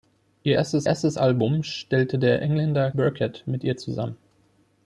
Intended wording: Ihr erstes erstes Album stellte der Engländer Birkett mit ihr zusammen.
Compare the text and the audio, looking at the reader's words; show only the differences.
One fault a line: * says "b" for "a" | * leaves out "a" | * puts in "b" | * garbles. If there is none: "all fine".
all fine